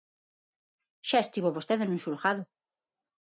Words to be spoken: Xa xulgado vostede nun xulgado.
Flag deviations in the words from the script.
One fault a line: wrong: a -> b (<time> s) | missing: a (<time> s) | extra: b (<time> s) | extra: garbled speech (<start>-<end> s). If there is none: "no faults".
wrong: xulgado -> estivo (1.2 s)